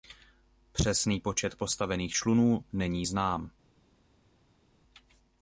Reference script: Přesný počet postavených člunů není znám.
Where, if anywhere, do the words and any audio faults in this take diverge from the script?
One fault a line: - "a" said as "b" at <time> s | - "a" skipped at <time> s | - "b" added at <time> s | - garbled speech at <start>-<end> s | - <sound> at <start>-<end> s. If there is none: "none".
none